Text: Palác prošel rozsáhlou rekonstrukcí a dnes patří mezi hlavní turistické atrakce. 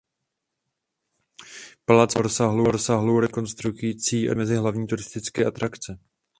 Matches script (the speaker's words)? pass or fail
fail